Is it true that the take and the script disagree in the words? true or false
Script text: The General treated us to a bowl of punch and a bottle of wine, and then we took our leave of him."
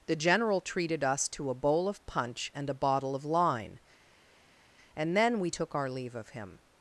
true